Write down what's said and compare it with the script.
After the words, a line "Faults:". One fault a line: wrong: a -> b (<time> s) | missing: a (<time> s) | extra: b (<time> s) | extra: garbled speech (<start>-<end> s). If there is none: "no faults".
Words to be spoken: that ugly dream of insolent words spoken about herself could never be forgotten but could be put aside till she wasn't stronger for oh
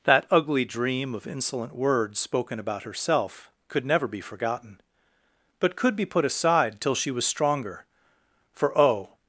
that ugly dream of insolent words spoken about herself could never be forgotten but could be put aside till she was stronger for oh
Faults:
wrong: wasn't -> was (7.1 s)